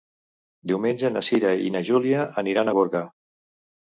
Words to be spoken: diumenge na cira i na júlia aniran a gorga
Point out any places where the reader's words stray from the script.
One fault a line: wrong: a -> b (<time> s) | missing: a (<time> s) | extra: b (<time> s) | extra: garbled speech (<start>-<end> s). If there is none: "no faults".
no faults